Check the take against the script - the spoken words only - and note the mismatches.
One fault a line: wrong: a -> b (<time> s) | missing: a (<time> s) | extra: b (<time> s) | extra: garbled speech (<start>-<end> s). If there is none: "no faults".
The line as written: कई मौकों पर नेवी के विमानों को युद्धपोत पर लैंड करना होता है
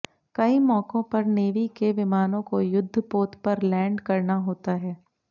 no faults